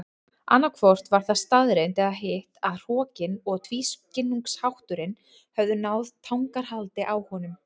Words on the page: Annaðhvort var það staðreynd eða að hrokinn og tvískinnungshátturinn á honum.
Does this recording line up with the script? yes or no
no